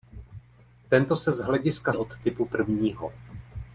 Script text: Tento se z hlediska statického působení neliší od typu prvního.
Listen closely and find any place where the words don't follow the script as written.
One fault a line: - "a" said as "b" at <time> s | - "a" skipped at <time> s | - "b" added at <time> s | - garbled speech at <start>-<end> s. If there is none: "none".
- "statického působení neliší" skipped at 1.9 s